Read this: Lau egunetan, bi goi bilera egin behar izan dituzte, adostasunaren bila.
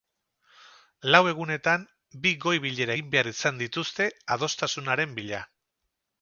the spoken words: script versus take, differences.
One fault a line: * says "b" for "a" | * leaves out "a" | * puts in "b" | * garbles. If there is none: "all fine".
all fine